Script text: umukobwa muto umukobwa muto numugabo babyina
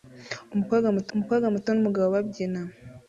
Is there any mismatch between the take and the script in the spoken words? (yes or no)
no